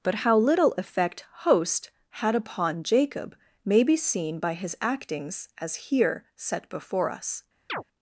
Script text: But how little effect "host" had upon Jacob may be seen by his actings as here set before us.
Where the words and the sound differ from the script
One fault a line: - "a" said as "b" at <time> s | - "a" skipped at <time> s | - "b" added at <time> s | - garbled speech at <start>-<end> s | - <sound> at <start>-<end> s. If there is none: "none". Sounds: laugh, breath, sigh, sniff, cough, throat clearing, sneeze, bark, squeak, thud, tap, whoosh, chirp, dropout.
- chirp at 7.7-7.8 s